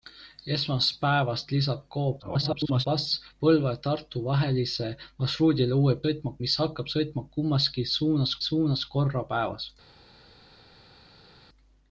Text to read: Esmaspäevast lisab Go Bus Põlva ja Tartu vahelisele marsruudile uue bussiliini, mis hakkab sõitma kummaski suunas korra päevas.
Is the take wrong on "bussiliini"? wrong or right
wrong